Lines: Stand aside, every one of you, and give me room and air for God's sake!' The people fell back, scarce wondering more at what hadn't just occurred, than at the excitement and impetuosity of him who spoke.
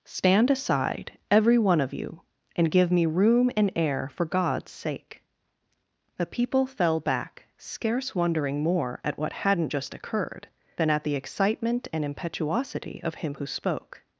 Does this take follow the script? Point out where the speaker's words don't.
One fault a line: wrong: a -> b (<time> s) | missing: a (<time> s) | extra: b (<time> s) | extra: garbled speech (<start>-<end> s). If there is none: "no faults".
no faults